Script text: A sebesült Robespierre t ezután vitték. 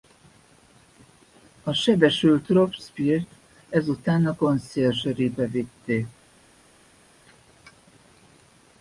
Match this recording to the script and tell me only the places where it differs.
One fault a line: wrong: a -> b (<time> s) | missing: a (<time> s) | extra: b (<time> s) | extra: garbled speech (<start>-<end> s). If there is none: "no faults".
extra: a Conciergerie be (4.3 s)